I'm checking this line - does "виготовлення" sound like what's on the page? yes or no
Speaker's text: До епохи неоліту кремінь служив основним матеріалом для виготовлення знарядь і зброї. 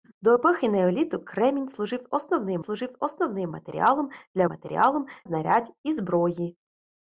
no